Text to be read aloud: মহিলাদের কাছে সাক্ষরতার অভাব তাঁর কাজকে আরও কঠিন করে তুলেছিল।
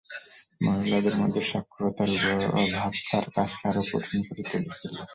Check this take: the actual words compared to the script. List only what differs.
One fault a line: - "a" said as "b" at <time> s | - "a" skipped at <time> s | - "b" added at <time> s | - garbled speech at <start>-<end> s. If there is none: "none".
- "কাছে" said as "মধ্যে" at 1.2 s